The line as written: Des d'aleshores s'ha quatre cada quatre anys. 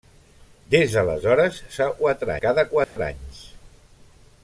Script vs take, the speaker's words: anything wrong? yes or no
no